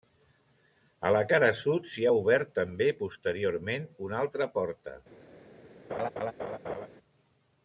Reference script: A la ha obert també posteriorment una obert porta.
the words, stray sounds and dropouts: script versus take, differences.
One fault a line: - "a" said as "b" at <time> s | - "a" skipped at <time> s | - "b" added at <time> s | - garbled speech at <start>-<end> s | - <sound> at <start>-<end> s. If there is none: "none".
- "cara sud s'hi" added at 1.3 s
- "obert" said as "altra" at 4.2 s
- laugh at 5.9-6.9 s